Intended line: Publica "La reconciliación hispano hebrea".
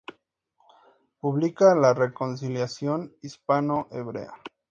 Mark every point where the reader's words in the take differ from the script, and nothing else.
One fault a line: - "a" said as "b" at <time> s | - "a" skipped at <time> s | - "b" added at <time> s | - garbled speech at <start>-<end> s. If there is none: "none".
none